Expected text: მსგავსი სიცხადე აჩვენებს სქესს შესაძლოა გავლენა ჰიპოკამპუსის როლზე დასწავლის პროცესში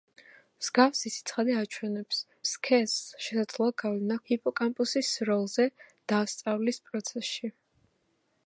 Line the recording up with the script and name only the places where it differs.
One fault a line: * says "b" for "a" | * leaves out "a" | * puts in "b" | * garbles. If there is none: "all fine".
all fine